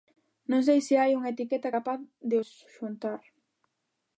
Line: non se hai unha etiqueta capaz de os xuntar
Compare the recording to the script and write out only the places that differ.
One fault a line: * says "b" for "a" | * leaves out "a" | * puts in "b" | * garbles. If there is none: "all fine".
* puts in "sei"